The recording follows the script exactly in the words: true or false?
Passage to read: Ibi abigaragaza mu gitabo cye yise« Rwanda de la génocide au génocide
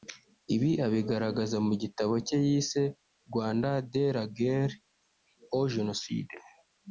false